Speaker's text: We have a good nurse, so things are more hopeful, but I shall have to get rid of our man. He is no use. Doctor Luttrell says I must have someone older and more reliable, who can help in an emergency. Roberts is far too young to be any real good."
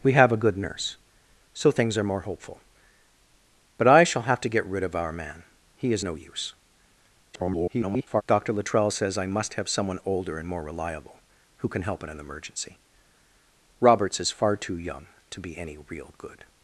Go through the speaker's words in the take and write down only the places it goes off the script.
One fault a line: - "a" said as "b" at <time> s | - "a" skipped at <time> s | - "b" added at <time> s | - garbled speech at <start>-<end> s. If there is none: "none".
- garbled speech at 7.3-8.2 s